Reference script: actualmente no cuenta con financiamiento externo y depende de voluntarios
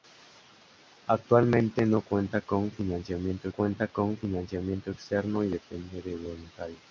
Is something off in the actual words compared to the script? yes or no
yes